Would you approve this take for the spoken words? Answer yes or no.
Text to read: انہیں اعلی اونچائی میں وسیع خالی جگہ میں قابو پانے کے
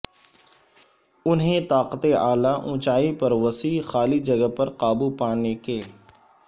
no